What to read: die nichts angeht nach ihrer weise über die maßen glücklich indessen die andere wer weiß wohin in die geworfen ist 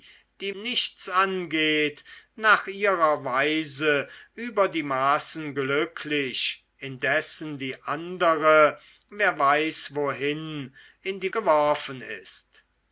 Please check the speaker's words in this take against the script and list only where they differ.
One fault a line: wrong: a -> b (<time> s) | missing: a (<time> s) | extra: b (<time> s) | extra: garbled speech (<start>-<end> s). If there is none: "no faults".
no faults